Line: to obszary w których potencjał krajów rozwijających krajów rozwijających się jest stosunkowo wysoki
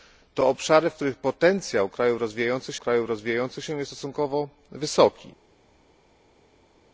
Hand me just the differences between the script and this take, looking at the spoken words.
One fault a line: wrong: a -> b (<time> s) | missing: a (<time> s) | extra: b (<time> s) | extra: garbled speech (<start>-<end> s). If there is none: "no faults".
no faults